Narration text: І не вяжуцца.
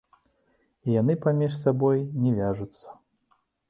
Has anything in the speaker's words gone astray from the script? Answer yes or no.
yes